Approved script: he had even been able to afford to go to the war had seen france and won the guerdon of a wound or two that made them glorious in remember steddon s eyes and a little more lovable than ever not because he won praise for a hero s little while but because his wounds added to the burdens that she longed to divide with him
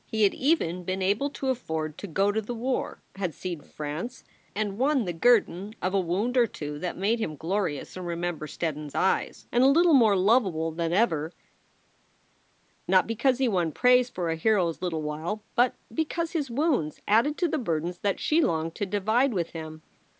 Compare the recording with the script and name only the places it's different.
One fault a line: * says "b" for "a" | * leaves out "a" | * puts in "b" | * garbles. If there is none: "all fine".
* says "him" for "them"